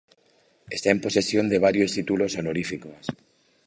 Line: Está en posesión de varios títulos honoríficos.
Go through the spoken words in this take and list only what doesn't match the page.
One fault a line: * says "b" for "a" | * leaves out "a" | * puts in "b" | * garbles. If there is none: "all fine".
all fine